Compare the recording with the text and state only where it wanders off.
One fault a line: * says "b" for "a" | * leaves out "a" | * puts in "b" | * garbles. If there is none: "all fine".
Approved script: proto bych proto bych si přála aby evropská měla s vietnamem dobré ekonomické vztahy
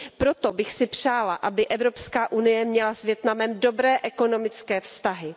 * leaves out "proto bych"
* puts in "unie"